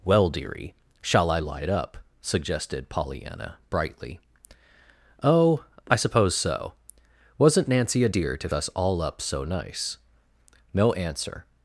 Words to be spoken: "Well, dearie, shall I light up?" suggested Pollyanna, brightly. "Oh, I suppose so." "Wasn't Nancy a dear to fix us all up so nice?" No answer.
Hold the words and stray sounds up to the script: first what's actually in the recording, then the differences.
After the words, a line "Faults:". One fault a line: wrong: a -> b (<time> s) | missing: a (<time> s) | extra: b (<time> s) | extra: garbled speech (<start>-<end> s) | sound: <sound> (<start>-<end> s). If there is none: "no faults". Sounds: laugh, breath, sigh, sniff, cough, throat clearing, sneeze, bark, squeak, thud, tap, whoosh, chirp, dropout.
"Well, dearie, shall I light up?" suggested Pollyanna, brightly. "Oh, I suppose so." "Wasn't Nancy a dear to us all up so nice?" No answer.
Faults:
missing: fix (8.5 s)